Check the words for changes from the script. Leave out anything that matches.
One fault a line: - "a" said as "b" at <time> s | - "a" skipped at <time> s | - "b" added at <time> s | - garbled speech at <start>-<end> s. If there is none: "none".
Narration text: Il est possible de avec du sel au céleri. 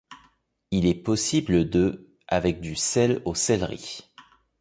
none